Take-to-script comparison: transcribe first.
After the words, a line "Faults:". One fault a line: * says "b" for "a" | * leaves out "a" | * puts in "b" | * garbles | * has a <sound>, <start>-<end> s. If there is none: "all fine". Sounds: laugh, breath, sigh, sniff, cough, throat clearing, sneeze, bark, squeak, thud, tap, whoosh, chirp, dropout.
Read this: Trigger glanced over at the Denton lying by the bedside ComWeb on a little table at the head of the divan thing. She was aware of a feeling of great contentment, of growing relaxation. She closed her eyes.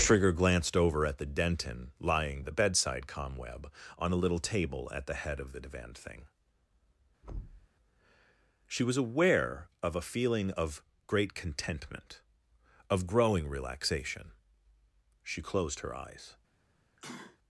Trigger glanced over at the Denton lying the bedside ComWeb on a little table at the head of the divan thing. She was aware of a feeling of great contentment, of growing relaxation. She closed her eyes.
Faults:
* leaves out "by"
* has a thud, 7.2-7.7 s
* has a sneeze, 17.0-17.4 s